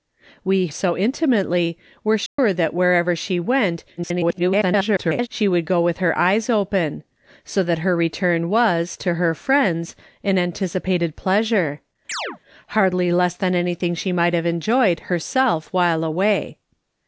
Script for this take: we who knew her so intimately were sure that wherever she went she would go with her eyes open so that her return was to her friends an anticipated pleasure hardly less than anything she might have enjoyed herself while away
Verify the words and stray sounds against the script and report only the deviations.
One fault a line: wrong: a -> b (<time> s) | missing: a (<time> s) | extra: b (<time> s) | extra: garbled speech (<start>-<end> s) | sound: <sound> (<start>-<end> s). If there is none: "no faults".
missing: who knew her (0.7 s)
sound: dropout (2.3-2.4 s)
extra: garbled speech (4.0-5.3 s)
sound: chirp (12.1-12.4 s)